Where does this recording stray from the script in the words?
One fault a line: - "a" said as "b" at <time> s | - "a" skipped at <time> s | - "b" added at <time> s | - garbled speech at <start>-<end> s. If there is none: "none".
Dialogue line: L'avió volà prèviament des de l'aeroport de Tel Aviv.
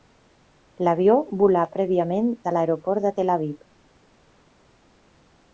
- "des" skipped at 2.3 s